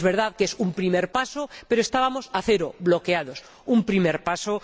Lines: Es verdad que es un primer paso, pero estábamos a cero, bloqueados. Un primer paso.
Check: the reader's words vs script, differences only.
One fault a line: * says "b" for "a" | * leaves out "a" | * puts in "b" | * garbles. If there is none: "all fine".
all fine